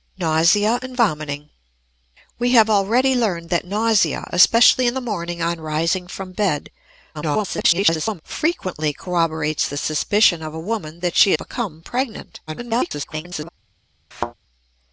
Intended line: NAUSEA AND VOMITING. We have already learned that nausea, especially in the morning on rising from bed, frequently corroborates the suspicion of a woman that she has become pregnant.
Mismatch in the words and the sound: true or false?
true